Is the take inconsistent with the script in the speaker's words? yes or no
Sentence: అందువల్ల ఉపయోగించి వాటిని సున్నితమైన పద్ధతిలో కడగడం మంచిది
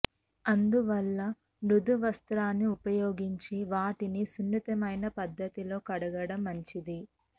yes